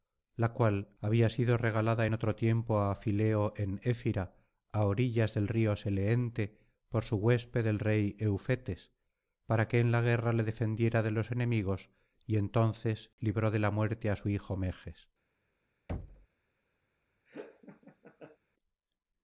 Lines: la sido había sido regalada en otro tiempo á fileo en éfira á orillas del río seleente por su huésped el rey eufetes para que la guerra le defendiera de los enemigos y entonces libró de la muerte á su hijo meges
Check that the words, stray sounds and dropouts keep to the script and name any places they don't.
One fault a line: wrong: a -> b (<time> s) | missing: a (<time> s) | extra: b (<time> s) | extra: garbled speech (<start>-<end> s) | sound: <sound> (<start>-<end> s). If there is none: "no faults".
wrong: sido -> cual (0.5 s)
extra: en (9.8 s)
sound: thud (15.9-16.3 s)
sound: laugh (17.3-18.4 s)